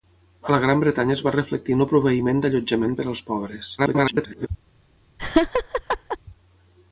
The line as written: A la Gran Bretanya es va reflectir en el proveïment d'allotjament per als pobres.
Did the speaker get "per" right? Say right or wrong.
right